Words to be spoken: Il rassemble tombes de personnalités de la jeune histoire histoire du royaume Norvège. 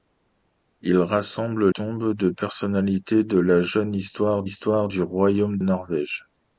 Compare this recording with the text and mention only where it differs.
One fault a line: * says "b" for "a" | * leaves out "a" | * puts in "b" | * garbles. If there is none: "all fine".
all fine